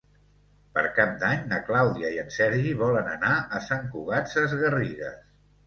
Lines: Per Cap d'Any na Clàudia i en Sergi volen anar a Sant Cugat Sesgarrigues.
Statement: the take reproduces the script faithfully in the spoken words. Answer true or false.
true